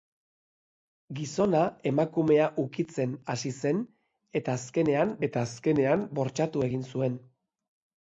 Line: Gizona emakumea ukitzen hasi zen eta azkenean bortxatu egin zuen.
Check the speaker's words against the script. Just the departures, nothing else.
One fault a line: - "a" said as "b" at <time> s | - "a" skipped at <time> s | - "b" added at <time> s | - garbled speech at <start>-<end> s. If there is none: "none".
- "eta azkenean" added at 5.3 s